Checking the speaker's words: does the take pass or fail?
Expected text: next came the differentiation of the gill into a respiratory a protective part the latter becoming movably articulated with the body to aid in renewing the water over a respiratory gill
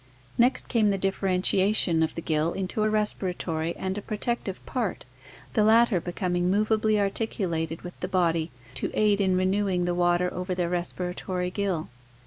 fail